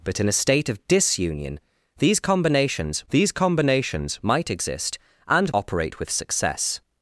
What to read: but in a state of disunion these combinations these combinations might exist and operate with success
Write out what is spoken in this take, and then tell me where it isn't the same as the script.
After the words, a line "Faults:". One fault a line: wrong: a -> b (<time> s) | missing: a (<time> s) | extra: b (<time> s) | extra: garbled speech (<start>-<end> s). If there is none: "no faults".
but in a state of disunion these combinations these combinations might exist and operate with success
Faults:
no faults